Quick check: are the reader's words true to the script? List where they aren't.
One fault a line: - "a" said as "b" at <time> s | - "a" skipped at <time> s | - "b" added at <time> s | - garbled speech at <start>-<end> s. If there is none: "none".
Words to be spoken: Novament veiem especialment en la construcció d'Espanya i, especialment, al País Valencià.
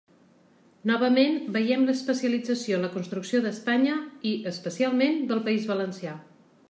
- "especialment" said as "l'especialització" at 1.9 s
- "al" said as "del" at 5.3 s